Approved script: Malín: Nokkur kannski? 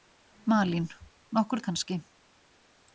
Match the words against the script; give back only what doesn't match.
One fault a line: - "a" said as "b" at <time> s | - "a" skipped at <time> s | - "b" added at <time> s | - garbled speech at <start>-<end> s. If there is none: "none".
none